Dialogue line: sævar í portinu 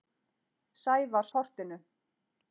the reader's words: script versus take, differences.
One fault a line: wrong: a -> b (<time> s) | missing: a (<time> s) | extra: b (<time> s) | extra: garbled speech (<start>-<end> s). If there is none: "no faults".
no faults